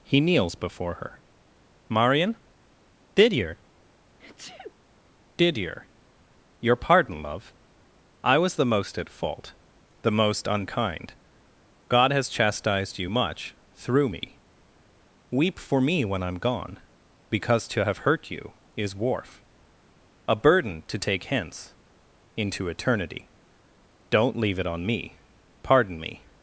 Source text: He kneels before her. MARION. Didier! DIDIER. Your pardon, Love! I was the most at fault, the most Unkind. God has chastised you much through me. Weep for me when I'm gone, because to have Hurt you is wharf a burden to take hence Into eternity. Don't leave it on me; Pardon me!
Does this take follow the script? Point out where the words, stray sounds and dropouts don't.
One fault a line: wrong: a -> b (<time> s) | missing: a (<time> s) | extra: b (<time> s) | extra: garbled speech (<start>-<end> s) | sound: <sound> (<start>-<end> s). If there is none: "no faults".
sound: sneeze (4.2-4.7 s)